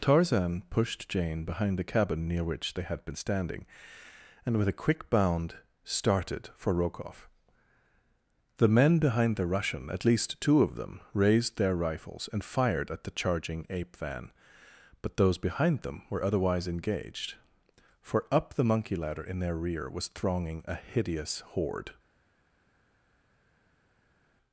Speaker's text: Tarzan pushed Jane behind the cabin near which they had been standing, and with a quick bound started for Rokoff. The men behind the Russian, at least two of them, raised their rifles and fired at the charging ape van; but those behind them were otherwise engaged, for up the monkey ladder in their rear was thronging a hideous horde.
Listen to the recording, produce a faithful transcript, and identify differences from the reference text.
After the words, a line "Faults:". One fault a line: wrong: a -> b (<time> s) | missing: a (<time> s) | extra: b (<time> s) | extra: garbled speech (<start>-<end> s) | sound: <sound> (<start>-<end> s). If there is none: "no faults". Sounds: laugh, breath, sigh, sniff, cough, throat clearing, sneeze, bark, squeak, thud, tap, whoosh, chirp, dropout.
Tarzan pushed Jane behind the cabin near which they had been standing, and with a quick bound started for Rokoff. The men behind the Russian, at least two of them, raised their rifles and fired at the charging ape van; but those behind them were otherwise engaged, for up the monkey ladder in their rear was thronging a hideous horde.
Faults:
no faults